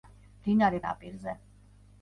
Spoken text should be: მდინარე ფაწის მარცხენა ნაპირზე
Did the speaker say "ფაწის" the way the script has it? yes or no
no